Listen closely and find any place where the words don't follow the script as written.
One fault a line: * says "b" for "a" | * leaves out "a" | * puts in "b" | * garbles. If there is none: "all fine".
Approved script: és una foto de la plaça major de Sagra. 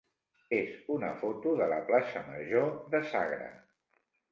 all fine